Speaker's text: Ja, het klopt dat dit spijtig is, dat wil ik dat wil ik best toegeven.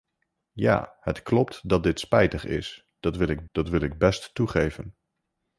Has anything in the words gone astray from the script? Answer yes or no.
no